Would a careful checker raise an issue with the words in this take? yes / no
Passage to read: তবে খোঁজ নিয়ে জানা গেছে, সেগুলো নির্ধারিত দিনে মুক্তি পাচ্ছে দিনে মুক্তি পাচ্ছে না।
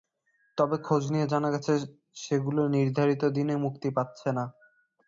yes